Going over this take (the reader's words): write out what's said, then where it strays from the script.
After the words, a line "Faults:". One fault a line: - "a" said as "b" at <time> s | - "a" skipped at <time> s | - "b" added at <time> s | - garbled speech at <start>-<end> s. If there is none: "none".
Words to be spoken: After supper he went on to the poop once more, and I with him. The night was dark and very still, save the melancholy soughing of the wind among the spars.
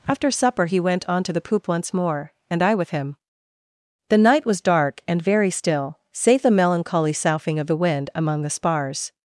After supper he went on to the poop once more, and I with him. The night was dark and very still, save the melancholy soughing of the wind among the spars.
Faults:
none